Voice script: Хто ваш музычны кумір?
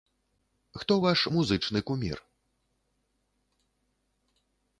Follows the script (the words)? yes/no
yes